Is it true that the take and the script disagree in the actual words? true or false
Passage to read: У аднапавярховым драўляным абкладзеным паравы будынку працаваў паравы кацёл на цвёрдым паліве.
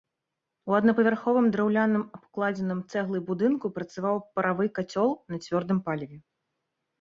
true